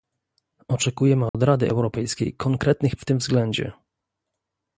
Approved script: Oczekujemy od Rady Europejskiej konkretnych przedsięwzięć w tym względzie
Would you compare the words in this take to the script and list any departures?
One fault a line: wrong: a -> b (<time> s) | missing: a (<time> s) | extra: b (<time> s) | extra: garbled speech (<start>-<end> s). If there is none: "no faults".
missing: przedsięwzięć (3.0 s)